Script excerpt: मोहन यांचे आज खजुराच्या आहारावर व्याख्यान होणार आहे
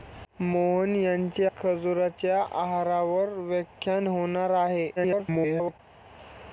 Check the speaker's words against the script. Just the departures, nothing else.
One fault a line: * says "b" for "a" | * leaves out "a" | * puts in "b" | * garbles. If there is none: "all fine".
* leaves out "आज"
* garbles